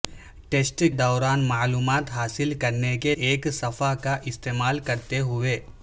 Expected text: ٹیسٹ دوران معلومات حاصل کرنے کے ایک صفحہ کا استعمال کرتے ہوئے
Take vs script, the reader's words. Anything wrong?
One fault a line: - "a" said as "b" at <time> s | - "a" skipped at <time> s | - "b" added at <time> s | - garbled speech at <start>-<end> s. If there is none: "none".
none